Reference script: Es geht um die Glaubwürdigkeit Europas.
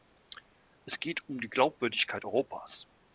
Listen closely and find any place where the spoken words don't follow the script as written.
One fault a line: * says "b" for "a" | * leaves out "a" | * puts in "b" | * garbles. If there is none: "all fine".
all fine